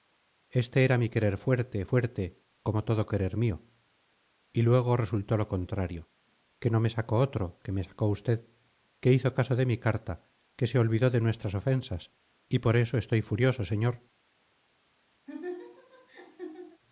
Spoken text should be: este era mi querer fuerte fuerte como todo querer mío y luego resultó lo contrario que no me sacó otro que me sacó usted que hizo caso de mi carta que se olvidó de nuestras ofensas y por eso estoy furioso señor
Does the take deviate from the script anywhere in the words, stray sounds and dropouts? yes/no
yes